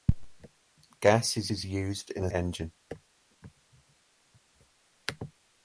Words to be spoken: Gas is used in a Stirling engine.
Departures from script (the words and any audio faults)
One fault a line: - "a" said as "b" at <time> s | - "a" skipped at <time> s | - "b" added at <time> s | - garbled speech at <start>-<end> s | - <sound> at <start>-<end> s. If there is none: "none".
- "is" added at 1.5 s
- "Stirling" skipped at 2.3 s